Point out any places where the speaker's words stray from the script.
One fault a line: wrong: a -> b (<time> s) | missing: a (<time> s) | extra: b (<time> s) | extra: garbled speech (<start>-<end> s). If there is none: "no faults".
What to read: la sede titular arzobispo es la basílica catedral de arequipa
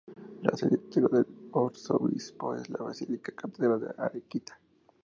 extra: del (1.1 s)